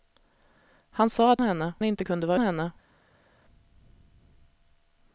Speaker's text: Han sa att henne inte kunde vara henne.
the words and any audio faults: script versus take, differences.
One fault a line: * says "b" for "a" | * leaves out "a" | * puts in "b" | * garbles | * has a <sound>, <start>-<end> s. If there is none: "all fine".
all fine